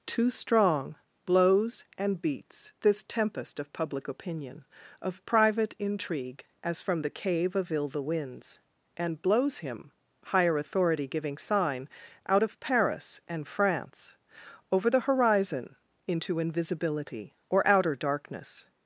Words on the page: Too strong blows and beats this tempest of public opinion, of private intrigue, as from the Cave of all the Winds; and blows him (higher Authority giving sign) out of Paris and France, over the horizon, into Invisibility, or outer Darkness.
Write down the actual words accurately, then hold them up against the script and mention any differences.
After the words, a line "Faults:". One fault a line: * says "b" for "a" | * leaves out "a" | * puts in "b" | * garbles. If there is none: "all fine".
Too strong blows and beats this tempest of public opinion, of private intrigue, as from the Cave of ill the Winds; and blows him (higher Authority giving sign) out of Paris and France, over the horizon, into Invisibility, or outer Darkness.
Faults:
* says "ill" for "all"